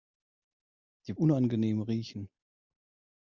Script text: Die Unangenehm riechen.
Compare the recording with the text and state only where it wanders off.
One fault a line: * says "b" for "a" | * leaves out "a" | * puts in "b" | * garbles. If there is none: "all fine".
all fine